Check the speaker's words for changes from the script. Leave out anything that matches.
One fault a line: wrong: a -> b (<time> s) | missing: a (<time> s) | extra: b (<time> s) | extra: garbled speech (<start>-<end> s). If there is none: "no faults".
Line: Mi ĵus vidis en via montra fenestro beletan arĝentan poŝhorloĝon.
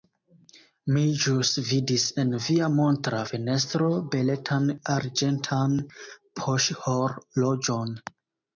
no faults